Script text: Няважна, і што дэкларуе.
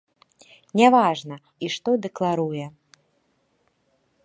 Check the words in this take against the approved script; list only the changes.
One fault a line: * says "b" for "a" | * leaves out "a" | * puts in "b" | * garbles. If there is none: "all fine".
all fine